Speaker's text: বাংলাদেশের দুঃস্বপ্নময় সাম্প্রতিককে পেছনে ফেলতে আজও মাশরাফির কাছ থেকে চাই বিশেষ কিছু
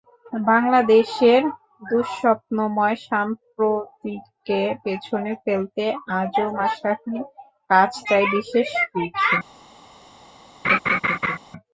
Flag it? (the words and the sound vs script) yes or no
yes